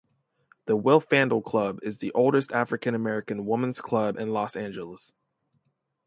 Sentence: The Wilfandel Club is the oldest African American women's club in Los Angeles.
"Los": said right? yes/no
yes